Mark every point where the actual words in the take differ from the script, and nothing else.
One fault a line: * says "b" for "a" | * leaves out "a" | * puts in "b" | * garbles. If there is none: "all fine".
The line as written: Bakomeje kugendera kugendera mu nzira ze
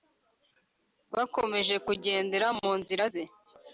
* leaves out "kugendera"